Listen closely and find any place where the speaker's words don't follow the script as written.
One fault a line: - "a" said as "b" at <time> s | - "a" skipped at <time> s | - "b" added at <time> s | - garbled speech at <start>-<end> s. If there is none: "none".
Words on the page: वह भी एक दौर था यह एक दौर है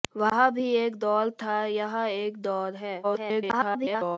- garbled speech at 3.0-4.2 s